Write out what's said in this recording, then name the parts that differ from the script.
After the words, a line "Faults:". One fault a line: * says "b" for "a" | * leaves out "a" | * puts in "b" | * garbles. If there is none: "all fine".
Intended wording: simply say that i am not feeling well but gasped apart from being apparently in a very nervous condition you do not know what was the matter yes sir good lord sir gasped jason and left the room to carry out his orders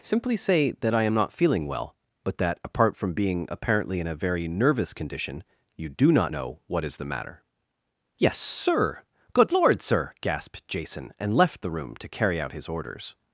simply say that i am not feeling well but that apart from being apparently in a very nervous condition you do not know what is the matter yes sir good lord sir gasped jason and left the room to carry out his orders
Faults:
* says "that" for "gasped"
* says "is" for "was"